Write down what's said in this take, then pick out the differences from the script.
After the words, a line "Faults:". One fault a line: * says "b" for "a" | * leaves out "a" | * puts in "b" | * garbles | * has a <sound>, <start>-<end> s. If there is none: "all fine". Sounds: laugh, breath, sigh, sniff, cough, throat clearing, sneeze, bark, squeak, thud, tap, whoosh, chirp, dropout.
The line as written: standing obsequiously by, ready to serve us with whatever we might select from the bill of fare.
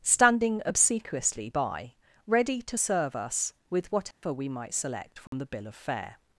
standing obsequiously by, ready to serve us with whatever we might select from the bill of fare.
Faults:
* has a dropout, 4.1-4.2 s
* has a dropout, 5.3-5.3 s